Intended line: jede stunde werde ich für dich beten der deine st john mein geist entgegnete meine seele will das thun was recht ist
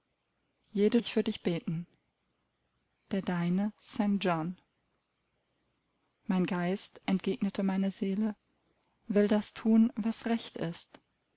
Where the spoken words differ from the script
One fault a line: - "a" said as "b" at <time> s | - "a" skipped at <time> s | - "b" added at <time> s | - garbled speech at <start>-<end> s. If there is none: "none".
- "stunde werde" skipped at 1.0 s